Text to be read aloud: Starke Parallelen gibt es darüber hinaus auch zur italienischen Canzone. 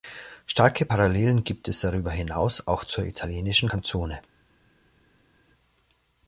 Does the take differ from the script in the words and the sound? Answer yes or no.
no